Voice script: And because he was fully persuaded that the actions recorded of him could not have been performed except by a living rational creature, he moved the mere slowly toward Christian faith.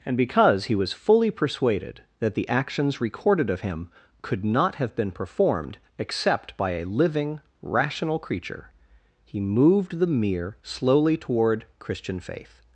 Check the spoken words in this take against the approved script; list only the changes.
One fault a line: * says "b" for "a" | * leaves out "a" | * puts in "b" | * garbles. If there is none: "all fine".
all fine